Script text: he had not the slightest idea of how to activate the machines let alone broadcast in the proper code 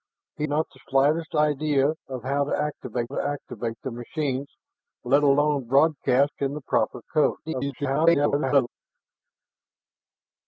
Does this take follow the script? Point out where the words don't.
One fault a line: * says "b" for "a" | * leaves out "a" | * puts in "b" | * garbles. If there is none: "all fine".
* leaves out "had"
* puts in "to activate"
* garbles